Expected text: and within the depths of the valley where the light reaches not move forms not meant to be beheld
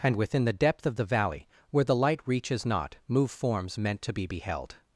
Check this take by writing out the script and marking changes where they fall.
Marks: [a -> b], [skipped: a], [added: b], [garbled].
and within the [depths -> depth] of the valley where the light reaches not move forms [skipped: not] meant to be beheld